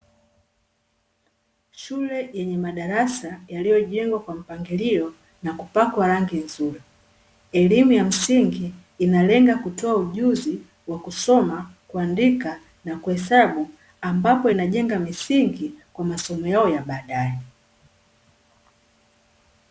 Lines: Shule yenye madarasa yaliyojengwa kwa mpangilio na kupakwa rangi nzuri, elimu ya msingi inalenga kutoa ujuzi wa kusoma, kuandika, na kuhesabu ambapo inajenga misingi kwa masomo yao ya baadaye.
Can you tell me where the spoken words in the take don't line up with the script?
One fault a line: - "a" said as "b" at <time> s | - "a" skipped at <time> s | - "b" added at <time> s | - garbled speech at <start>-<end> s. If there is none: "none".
none